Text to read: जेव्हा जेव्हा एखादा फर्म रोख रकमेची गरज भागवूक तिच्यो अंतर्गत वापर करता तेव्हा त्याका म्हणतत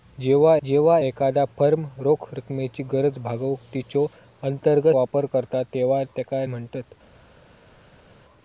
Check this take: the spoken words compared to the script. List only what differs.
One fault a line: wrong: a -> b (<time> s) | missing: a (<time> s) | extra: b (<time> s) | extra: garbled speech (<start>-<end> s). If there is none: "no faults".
no faults